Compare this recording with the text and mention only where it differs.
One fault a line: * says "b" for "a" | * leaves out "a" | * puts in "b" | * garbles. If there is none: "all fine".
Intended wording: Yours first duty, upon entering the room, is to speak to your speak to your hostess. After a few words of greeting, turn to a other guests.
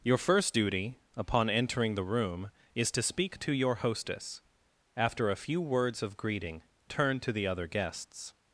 * says "Your" for "Yours"
* leaves out "speak to your"
* says "the" for "a"